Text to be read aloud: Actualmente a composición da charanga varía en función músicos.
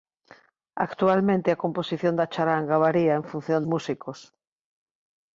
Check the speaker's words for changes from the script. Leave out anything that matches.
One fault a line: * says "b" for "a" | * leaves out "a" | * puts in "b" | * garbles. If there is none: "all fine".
all fine